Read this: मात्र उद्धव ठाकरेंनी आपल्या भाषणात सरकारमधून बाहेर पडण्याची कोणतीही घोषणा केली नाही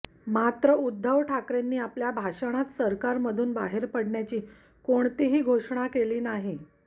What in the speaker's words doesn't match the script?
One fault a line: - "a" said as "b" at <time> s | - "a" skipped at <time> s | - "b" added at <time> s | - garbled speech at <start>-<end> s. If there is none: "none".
none